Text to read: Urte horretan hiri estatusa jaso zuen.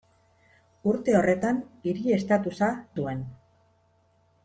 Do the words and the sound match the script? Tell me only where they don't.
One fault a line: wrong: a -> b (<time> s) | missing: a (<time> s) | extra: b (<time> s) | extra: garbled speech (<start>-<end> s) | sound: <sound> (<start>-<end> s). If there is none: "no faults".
missing: jaso (2.7 s)